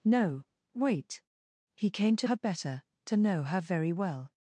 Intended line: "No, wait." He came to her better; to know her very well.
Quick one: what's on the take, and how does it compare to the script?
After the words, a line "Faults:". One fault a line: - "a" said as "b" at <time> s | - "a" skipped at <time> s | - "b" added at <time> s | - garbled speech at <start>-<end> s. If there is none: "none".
"No, wait." He came to her better; to know her very well.
Faults:
none